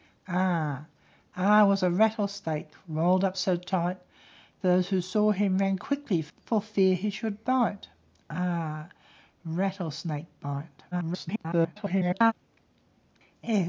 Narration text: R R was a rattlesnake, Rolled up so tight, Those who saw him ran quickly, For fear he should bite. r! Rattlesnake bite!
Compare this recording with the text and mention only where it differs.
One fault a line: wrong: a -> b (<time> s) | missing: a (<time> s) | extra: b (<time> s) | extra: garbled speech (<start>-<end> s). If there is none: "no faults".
extra: garbled speech (10.9-12.3 s)